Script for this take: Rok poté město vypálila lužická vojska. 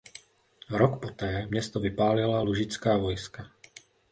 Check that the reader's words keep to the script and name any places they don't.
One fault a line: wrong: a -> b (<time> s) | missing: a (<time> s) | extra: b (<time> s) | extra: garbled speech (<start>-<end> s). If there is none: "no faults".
no faults